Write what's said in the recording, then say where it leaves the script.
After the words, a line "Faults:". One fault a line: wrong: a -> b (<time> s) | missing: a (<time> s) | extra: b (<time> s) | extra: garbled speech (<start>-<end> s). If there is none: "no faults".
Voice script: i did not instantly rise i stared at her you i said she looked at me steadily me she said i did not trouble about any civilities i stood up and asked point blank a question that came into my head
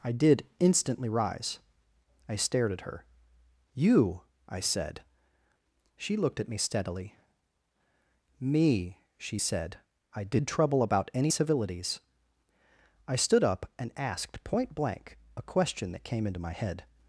i did instantly rise i stared at her you i said she looked at me steadily me she said i did trouble about any civilities i stood up and asked point blank a question that came into my head
Faults:
missing: not (0.5 s)
missing: not (10.5 s)